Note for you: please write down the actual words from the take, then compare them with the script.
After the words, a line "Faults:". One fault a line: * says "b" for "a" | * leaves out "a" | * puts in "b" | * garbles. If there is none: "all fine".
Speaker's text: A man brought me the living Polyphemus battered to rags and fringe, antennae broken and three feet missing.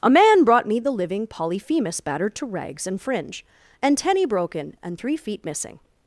A man brought me the living Polyphemus battered to rags and fringe, antennae broken and three feet missing.
Faults:
all fine